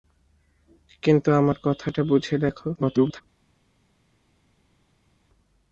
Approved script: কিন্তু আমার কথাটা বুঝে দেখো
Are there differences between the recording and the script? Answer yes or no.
yes